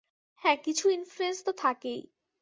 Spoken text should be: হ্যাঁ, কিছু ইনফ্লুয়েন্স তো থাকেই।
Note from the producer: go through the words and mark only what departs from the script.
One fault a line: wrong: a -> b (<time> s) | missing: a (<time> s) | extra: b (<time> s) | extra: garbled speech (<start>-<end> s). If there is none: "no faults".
no faults